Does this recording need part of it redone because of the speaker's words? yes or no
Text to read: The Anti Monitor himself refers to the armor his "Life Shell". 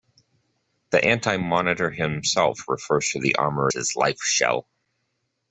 no